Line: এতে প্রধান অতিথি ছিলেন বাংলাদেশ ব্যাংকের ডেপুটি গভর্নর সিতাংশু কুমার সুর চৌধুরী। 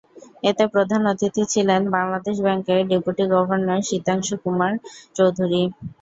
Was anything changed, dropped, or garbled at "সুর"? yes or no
yes